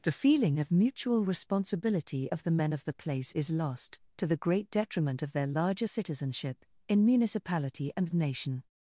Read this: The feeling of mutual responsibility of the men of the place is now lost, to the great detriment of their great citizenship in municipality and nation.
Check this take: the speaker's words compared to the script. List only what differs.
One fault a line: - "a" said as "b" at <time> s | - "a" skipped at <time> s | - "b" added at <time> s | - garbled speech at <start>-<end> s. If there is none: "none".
- "now" skipped at 3.5 s
- "great" said as "larger" at 5.5 s